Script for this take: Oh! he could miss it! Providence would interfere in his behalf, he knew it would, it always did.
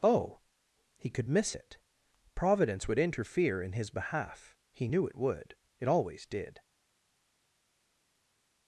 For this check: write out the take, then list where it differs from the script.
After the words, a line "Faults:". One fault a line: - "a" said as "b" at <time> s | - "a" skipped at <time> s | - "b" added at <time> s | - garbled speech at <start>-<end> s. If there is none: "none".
Oh! he could miss it! Providence would interfere in his behalf, he knew it would, it always did.
Faults:
none